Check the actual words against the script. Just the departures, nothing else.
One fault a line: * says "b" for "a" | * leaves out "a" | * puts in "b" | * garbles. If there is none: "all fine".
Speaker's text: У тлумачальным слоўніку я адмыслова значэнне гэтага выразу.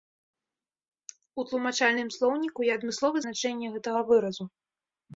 all fine